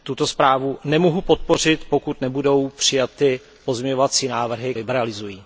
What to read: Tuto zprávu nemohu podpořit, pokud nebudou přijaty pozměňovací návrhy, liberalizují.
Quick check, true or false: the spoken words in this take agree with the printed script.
true